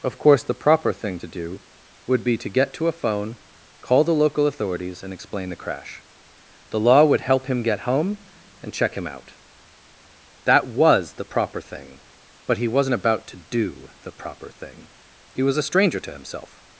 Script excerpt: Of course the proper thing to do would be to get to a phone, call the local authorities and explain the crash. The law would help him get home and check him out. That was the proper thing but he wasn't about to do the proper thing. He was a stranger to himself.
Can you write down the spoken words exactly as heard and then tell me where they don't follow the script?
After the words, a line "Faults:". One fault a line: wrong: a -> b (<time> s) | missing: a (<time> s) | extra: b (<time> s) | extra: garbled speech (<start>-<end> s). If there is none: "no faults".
Of course the proper thing to do would be to get to a phone, call the local authorities and explain the crash. The law would help him get home and check him out. That was the proper thing but he wasn't about to do the proper thing. He was a stranger to himself.
Faults:
no faults